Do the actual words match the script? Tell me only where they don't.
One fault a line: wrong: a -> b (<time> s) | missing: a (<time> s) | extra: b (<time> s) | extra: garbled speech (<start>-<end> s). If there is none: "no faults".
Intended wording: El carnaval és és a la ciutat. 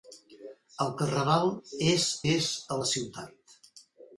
no faults